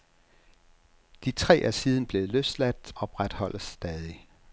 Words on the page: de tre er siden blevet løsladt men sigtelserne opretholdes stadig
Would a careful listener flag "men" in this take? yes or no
yes